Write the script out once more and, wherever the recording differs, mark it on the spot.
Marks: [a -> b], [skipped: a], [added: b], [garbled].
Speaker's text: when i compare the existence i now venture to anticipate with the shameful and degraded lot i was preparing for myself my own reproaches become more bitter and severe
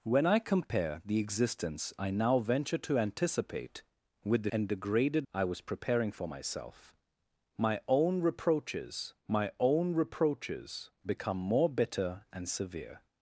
when i compare the existence i now venture to anticipate with the [skipped: shameful] and degraded [skipped: lot] i was preparing for myself my own reproaches [added: my own reproaches] become more bitter and severe